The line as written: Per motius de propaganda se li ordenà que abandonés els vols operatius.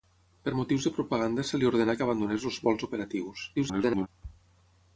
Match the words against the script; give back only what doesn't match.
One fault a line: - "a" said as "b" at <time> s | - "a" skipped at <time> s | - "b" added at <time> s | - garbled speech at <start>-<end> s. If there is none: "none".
- garbled speech at 3.6-4.1 s